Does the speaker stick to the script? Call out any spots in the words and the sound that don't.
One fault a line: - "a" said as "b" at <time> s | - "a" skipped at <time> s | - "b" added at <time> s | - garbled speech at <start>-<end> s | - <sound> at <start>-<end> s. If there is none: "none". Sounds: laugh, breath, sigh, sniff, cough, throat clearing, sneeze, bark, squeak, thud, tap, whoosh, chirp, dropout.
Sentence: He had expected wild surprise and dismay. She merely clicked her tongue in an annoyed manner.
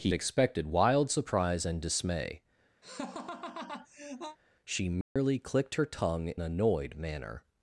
- "had" skipped at 0.1 s
- laugh at 2.8-4.4 s
- dropout at 5.0-5.2 s
- "in an" skipped at 6.3 s